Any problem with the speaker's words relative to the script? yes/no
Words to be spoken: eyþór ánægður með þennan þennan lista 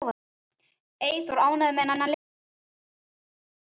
no